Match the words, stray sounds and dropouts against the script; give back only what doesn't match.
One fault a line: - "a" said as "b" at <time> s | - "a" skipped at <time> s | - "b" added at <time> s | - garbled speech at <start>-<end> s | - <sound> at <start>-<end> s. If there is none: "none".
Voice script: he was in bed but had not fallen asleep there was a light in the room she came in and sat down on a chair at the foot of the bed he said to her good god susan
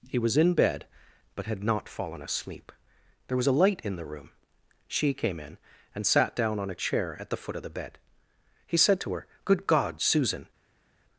none